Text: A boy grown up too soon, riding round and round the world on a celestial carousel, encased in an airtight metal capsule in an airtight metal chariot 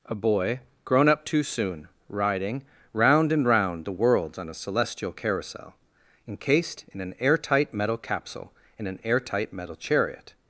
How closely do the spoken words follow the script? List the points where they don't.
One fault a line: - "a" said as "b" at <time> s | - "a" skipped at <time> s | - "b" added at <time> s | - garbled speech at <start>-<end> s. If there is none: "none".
- "world" said as "worlds" at 3.9 s